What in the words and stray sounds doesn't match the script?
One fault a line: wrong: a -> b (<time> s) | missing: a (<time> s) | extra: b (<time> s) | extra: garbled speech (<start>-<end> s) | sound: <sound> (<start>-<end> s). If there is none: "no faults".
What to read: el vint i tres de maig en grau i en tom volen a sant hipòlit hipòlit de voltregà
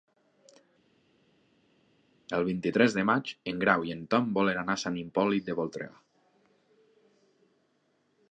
extra: anar (4.6 s)
missing: hipòlit (5.5 s)